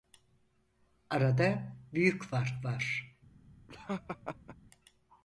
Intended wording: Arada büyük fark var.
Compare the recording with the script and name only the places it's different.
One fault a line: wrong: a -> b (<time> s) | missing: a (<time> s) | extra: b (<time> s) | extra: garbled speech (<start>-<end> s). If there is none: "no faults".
no faults